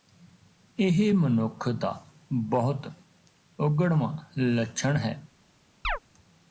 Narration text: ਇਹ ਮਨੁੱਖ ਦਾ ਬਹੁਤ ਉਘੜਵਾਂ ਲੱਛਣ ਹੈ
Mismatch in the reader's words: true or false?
false